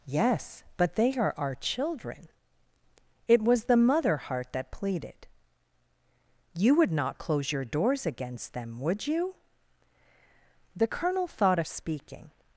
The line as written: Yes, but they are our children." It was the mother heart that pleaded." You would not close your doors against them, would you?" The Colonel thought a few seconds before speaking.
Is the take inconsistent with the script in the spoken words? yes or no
yes